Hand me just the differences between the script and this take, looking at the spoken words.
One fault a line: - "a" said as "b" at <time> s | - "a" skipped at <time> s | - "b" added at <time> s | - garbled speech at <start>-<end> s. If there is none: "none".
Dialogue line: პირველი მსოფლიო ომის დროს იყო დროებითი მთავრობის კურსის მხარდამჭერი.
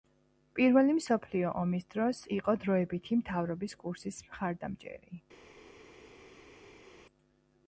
none